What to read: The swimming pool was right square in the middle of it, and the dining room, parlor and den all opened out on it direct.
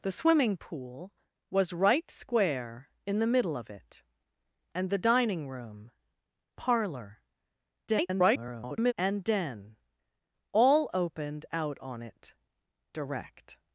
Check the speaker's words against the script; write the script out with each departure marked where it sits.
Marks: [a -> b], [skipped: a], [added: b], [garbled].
The swimming pool was right square in the middle of it, and the dining room, parlor [garbled] and den all opened out on it direct.